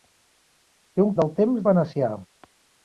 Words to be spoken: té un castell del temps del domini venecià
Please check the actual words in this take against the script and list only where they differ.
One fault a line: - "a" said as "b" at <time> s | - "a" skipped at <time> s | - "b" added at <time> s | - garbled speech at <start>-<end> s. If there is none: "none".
- "castell" skipped at 1.1 s
- "del domini" skipped at 1.7 s